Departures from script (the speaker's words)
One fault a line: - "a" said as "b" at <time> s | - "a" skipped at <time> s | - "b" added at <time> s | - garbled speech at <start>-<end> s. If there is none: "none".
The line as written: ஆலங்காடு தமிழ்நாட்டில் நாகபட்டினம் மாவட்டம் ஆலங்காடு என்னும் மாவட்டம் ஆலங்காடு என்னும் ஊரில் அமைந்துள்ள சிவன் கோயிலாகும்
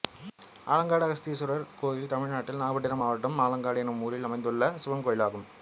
- "அகஸ்தீஸ்வரர் கோயில்" added at 1.1 s
- "மாவட்டம் ஆலங்காடு என்னும்" skipped at 4.0 s